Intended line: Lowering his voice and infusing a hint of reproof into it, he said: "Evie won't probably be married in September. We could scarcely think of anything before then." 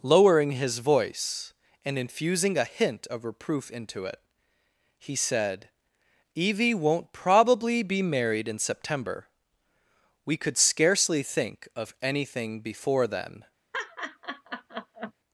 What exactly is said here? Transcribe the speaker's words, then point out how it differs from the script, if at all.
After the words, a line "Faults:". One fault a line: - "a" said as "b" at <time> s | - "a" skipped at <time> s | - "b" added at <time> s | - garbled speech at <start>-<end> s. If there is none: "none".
Lowering his voice and infusing a hint of reproof into it, he said: "Evie won't probably be married in September. We could scarcely think of anything before then."
Faults:
none